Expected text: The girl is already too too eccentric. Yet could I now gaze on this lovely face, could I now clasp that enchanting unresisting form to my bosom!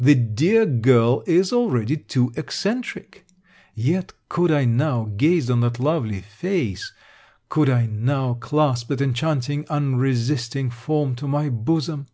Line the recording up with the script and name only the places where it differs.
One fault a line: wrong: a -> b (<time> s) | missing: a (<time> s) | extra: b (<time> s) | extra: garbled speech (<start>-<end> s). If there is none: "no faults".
extra: dear (0.1 s)
missing: too (2.3 s)
wrong: this -> that (5.6 s)